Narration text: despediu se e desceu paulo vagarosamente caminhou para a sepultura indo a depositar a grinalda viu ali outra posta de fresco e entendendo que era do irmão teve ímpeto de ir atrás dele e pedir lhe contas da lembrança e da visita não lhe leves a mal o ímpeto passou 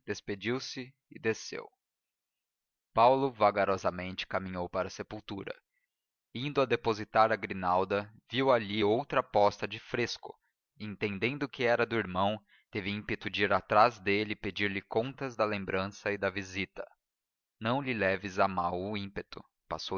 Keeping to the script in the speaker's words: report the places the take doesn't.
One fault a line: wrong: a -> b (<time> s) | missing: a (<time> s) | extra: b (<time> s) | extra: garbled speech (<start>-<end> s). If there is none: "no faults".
no faults